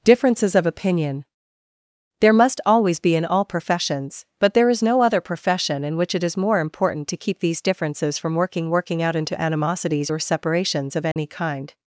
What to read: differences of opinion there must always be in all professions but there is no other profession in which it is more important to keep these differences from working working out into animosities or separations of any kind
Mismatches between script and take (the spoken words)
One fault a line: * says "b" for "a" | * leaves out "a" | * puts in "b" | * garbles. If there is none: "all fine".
all fine